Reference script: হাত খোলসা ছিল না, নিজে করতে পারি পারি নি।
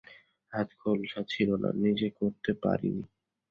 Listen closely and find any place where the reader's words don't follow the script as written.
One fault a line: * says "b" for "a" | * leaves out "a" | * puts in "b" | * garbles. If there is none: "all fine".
* leaves out "পারি"